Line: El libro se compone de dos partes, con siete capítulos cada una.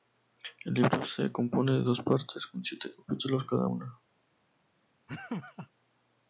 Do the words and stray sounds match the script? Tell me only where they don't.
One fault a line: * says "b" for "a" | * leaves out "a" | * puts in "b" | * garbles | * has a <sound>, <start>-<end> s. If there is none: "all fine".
* has a laugh, 5.1-5.7 s